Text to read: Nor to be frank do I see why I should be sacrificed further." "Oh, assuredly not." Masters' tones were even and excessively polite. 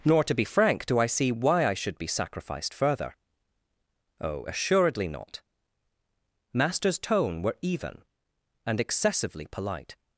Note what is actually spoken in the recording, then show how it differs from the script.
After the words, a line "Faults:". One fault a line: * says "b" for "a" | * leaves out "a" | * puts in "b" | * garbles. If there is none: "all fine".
Nor to be frank do I see why I should be sacrificed further." "Oh, assuredly not." Masters' tone were even and excessively polite.
Faults:
* says "tone" for "tones"